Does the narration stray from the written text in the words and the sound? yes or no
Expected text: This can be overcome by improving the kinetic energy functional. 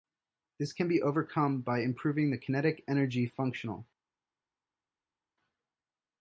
no